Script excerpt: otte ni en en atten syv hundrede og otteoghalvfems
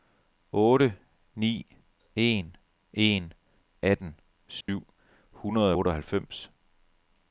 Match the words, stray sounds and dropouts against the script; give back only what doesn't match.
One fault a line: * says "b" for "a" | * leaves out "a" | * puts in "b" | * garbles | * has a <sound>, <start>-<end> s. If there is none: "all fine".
* has a dropout, 4.6-4.7 s
* leaves out "og"